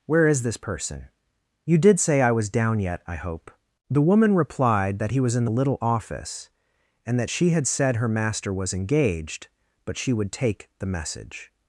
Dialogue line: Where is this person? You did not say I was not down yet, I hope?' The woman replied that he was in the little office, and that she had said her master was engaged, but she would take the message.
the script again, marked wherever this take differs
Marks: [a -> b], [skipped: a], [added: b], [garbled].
Where is this person? You did [skipped: not] say I was [skipped: not] down yet, I hope?' The woman replied that he was in the little office, and that she had said her master was engaged, but she would take the message.